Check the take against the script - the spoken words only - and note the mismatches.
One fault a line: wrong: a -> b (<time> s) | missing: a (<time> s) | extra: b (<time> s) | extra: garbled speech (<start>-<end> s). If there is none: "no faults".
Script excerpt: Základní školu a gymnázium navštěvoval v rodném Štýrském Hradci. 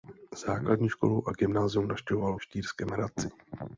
missing: rodném (2.4 s)